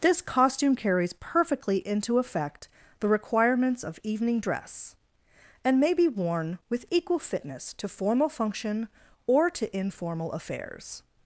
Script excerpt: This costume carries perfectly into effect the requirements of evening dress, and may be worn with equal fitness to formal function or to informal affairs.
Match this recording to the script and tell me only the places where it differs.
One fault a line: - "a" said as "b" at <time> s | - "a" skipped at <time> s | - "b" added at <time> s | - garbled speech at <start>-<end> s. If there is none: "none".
none